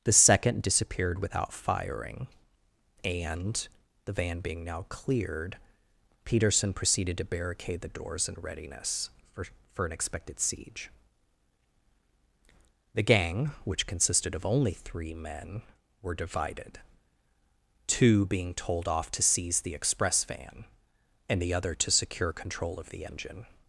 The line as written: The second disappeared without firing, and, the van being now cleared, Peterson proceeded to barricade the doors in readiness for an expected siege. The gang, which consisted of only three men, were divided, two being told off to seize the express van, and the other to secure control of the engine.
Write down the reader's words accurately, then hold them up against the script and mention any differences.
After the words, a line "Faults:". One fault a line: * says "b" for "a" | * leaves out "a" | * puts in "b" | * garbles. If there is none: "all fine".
The second disappeared without firing, and, the van being now cleared, Peterson proceeded to barricade the doors in readiness for for an expected siege. The gang, which consisted of only three men, were divided, two being told off to seize the express van, and the other to secure control of the engine.
Faults:
* puts in "for"